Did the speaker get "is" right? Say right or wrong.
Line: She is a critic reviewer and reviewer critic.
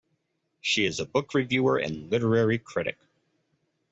right